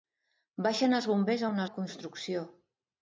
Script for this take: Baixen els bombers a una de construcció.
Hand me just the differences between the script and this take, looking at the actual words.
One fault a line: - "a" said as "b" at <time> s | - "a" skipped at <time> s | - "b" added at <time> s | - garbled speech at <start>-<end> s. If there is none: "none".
none